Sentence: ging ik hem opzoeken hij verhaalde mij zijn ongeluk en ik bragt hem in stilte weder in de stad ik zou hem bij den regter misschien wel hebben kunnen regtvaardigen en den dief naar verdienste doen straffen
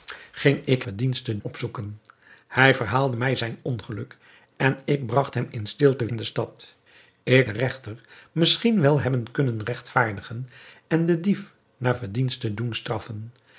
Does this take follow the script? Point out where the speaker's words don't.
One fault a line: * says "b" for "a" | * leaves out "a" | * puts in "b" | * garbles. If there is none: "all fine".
* says "verdienste" for "hem"
* leaves out "weder"
* leaves out "zou hem bij"